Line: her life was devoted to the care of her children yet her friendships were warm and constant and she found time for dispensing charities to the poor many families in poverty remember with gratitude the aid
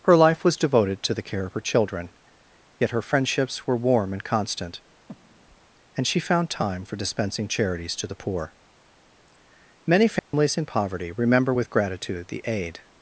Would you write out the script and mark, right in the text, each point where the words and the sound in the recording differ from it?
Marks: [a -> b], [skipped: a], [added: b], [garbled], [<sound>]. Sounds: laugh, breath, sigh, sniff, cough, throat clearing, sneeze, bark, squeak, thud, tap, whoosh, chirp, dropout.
her life was devoted to the care of her children yet her friendships were warm and constant [breath] and she found time for dispensing charities to the poor many families [dropout] in poverty remember with gratitude the aid